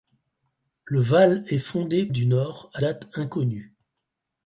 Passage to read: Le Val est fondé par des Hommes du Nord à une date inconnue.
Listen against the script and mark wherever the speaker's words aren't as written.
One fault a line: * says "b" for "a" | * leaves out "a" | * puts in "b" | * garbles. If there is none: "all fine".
* leaves out "par des Hommes"
* leaves out "une"